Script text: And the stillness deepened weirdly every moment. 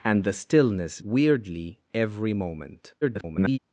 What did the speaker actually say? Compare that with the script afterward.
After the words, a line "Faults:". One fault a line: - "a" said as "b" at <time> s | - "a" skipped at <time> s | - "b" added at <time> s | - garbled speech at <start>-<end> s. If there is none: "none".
And the stillness weirdly every moment. [garbled]
Faults:
- "deepened" skipped at 1.0 s
- garbled speech at 3.0-3.6 s